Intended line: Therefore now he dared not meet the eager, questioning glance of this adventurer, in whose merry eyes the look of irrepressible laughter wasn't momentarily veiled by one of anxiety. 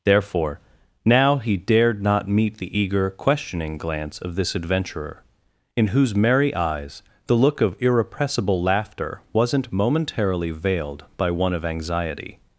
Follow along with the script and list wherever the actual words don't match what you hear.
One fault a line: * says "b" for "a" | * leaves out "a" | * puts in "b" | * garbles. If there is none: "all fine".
all fine